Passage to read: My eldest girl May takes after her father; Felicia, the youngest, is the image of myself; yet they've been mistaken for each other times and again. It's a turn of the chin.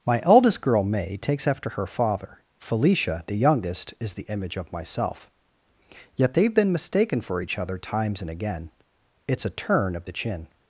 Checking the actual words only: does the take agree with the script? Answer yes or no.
yes